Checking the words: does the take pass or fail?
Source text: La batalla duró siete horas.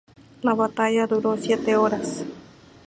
pass